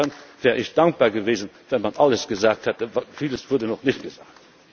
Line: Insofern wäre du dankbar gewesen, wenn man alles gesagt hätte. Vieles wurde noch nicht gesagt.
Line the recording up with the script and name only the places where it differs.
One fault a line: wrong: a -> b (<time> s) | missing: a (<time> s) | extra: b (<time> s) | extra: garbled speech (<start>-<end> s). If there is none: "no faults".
wrong: du -> ich (0.6 s)